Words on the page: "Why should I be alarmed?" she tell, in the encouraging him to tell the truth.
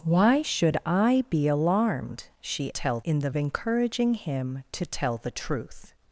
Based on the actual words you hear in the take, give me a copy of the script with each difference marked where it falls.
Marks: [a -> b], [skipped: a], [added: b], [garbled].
"Why should I be alarmed?" she tell, in the encouraging him to tell the truth.